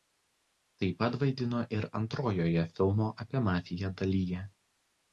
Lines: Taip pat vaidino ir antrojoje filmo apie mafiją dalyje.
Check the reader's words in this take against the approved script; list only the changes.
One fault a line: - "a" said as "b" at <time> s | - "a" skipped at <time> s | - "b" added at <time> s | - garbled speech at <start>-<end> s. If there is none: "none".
none